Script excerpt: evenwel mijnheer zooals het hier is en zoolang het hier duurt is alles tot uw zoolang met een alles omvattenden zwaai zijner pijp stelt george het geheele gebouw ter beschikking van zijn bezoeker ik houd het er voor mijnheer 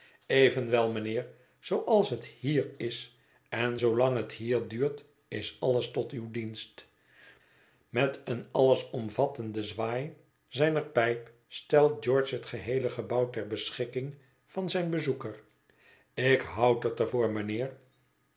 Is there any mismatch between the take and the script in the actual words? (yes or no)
yes